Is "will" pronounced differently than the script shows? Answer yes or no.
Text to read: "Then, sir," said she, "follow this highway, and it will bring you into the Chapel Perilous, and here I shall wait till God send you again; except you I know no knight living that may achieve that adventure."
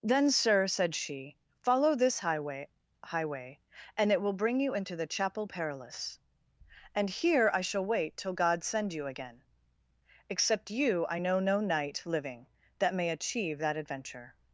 no